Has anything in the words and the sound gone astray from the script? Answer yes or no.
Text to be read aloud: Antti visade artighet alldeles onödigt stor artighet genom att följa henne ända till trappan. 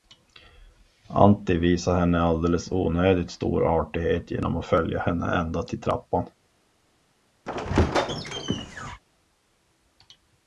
yes